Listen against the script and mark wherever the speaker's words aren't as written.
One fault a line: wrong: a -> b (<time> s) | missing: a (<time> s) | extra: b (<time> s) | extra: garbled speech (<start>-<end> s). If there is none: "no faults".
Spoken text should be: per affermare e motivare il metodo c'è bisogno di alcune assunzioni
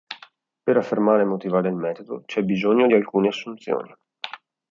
no faults